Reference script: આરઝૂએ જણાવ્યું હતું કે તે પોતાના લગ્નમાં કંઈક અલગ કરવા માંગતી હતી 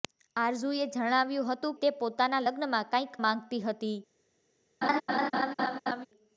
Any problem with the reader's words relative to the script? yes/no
yes